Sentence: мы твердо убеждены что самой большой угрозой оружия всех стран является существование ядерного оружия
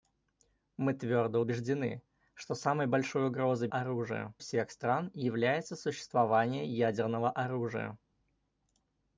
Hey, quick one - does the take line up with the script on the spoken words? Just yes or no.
yes